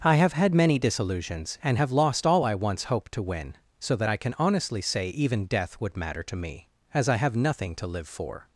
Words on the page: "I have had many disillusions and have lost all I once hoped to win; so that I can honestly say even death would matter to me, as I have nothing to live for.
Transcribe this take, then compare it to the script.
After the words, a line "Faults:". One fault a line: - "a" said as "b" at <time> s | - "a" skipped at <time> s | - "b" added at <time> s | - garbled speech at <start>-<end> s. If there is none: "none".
"I have had many disillusions and have lost all I once hoped to win; so that I can honestly say even death would matter to me, as I have nothing to live for.
Faults:
none